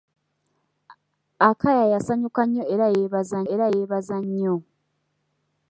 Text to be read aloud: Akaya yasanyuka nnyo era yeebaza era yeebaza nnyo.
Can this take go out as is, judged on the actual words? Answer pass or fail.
pass